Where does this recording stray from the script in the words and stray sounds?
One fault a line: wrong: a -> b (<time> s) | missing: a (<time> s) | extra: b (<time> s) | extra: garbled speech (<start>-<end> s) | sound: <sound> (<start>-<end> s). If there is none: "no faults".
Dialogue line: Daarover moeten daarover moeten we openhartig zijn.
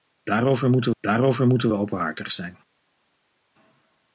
no faults